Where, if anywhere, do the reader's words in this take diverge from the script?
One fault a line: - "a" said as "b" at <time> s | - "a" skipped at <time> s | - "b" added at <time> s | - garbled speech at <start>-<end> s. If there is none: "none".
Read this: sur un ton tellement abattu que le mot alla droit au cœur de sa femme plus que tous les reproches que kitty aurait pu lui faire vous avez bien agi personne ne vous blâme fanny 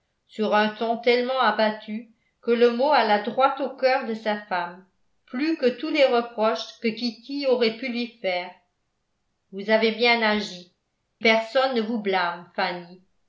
none